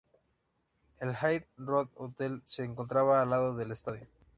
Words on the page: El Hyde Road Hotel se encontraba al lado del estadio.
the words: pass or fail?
pass